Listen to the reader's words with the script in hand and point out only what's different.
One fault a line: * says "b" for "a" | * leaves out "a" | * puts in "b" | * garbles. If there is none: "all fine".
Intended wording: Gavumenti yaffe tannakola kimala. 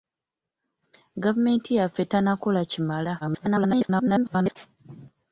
* garbles